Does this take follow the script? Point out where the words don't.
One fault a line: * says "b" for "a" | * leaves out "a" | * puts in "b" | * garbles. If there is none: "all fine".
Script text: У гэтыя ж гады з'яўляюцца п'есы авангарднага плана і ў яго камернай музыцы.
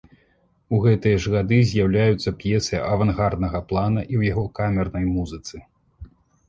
all fine